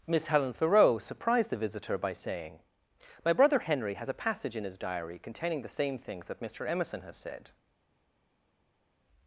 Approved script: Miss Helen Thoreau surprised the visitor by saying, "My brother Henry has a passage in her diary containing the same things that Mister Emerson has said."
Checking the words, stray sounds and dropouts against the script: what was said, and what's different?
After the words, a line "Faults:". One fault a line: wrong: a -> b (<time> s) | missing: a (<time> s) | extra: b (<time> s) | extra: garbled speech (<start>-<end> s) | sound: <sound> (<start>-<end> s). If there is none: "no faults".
Miss Helen Thoreau surprised the visitor by saying, "My brother Henry has a passage in his diary containing the same things that Mister Emerson has said."
Faults:
wrong: her -> his (4.6 s)